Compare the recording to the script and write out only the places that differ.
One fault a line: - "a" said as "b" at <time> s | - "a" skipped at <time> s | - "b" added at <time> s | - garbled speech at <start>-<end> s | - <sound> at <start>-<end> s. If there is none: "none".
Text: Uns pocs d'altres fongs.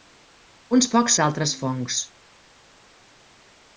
none